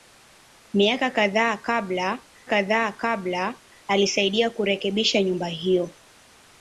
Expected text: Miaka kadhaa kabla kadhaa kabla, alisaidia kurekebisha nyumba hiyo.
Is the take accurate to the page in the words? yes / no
yes